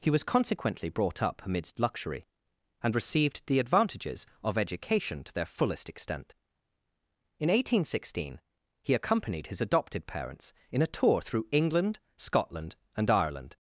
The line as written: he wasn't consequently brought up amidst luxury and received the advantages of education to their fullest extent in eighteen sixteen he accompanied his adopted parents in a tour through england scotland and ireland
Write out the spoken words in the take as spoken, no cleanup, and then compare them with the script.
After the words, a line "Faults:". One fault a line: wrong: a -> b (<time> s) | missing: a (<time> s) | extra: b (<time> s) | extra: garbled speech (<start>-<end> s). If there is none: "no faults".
he was consequently brought up amidst luxury and received the advantages of education to their fullest extent in eighteen sixteen he accompanied his adopted parents in a tour through england scotland and ireland
Faults:
wrong: wasn't -> was (0.1 s)